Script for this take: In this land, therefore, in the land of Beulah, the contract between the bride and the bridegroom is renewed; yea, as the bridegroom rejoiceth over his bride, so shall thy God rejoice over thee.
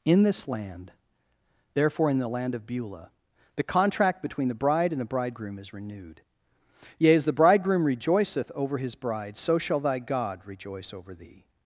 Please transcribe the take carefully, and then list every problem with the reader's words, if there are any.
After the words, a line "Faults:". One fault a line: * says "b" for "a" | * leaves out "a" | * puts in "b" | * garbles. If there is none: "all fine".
In this land, therefore, in the land of Beulah, the contract between the bride and the bridegroom is renewed; yea, as the bridegroom rejoiceth over his bride, so shall thy God rejoice over thee.
Faults:
all fine